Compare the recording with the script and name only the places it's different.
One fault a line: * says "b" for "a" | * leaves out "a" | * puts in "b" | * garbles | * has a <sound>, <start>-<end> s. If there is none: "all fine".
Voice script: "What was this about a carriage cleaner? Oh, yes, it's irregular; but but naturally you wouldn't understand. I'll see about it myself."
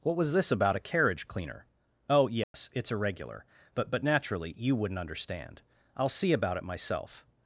* has a dropout, 2.4-2.5 s